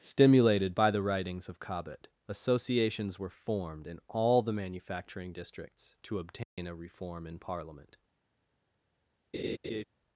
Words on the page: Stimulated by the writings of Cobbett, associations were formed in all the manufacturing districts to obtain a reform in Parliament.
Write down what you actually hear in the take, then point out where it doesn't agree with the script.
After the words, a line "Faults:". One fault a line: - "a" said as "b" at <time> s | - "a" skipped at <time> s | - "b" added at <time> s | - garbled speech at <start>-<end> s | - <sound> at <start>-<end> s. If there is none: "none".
Stimulated by the writings of Cobbett, associations were formed in all the manufacturing districts to obtain a reform in Parliament.
Faults:
- dropout at 6.4-6.6 s
- laugh at 9.3-9.8 s